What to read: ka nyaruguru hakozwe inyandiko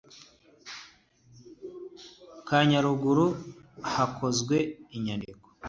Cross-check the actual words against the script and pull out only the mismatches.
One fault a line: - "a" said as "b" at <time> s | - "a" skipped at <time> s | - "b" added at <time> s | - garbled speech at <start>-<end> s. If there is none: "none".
none